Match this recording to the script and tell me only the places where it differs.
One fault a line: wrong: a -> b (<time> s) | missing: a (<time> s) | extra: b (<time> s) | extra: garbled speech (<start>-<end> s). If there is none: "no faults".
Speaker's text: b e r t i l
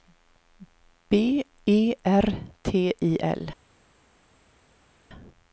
no faults